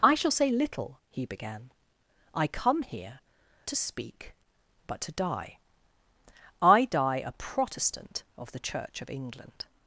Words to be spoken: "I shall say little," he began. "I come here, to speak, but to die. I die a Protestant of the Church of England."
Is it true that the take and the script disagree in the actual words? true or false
false